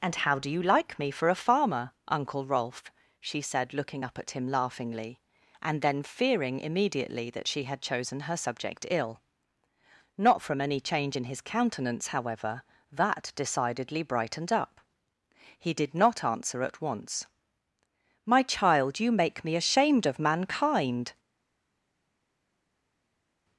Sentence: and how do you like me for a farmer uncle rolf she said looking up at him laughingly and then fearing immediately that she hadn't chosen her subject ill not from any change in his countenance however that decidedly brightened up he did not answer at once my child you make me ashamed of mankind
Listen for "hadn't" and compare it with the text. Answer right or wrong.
wrong